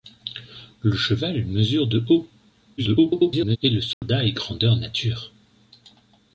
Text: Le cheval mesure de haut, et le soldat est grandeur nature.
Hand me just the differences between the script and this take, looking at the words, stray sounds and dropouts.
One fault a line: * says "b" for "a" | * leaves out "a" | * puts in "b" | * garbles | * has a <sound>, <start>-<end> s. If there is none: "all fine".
* garbles
* has a dropout, 3.9-4.0 s